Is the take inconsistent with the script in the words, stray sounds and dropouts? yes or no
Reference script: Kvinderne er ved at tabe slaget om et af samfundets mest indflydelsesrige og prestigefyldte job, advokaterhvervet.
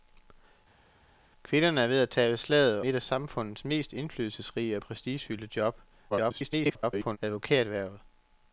yes